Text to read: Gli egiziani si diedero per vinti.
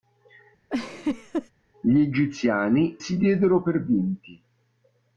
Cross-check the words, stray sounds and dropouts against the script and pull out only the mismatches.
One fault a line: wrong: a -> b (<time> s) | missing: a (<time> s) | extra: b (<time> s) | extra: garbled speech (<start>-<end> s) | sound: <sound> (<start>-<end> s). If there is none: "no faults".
sound: laugh (0.7-1.5 s)